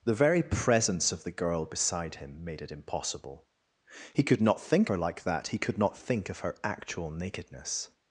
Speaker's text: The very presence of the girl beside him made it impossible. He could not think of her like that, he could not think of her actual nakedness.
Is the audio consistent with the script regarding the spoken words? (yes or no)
no